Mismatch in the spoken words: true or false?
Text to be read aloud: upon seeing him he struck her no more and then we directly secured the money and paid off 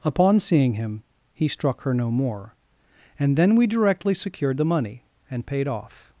false